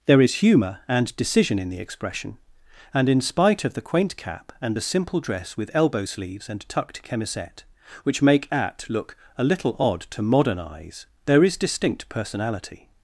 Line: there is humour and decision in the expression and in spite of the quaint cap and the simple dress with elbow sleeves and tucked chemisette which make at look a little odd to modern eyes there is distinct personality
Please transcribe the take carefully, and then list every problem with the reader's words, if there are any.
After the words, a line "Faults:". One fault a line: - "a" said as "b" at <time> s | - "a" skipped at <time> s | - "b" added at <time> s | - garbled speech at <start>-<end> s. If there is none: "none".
there is humour and decision in the expression and in spite of the quaint cap and the simple dress with elbow sleeves and tucked chemisette which make at look a little odd to modern eyes there is distinct personality
Faults:
none